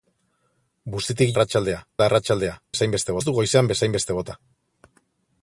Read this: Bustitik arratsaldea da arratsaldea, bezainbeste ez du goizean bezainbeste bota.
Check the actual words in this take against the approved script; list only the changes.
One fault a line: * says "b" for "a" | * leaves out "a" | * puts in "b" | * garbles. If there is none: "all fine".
all fine